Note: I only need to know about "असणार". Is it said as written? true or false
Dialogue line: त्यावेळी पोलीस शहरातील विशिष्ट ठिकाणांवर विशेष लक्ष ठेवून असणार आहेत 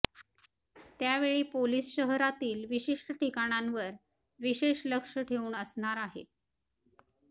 true